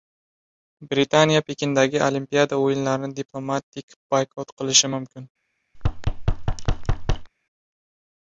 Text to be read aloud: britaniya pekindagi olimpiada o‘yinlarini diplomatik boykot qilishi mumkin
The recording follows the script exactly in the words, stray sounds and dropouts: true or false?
false